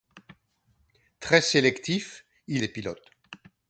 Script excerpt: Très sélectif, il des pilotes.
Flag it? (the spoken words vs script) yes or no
no